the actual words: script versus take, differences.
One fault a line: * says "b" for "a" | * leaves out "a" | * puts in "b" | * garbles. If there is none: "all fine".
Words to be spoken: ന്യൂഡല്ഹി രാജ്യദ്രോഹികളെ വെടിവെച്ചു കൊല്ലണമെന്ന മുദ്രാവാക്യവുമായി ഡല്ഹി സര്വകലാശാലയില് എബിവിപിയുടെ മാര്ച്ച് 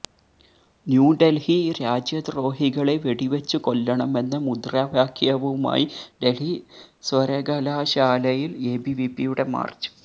all fine